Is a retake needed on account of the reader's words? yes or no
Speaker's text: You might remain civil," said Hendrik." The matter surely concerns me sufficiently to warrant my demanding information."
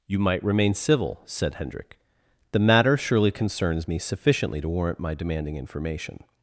no